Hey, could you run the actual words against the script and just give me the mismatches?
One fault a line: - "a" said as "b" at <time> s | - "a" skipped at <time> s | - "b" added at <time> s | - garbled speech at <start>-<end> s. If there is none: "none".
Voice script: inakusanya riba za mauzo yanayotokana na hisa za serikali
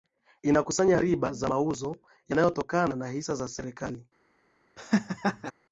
none